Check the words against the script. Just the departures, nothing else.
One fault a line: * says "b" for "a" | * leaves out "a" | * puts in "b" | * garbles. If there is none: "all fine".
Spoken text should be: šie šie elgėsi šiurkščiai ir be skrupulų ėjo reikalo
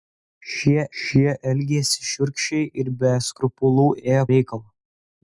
all fine